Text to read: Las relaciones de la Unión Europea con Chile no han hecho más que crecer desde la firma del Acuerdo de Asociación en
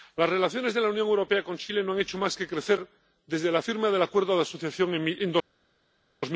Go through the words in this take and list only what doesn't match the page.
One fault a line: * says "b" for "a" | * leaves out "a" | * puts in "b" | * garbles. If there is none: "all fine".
all fine